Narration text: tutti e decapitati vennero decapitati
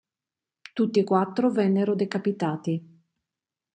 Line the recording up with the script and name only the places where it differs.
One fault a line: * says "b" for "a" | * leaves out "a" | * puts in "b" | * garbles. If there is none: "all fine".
* says "quattro" for "decapitati"